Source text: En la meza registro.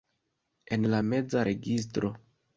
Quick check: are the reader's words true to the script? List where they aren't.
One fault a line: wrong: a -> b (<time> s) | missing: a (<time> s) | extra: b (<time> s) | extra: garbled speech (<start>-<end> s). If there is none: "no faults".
no faults